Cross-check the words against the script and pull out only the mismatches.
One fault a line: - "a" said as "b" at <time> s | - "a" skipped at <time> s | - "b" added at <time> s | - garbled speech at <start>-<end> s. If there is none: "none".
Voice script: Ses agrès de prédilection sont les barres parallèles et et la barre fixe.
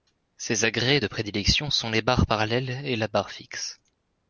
- "et" skipped at 2.9 s